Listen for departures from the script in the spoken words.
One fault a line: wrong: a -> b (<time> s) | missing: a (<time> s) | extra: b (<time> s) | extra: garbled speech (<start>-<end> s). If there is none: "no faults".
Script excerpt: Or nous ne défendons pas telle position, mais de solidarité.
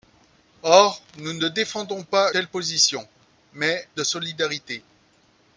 no faults